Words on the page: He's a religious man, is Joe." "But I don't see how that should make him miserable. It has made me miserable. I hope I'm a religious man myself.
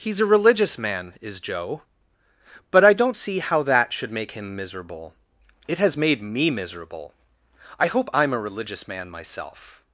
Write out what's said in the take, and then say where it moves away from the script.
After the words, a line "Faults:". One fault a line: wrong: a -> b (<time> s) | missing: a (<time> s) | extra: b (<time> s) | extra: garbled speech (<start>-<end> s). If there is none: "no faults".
He's a religious man, is Joe." "But I don't see how that should make him miserable. It has made me miserable. I hope I'm a religious man myself.
Faults:
no faults